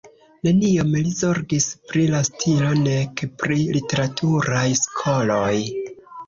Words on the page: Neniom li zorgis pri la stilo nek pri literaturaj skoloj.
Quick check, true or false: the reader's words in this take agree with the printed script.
true